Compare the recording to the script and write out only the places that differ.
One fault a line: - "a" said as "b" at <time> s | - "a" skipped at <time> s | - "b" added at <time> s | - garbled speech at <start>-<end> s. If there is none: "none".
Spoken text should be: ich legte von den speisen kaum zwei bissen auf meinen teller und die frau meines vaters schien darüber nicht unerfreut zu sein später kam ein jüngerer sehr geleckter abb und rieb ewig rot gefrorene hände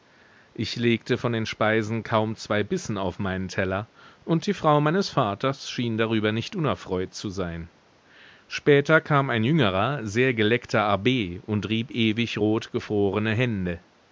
none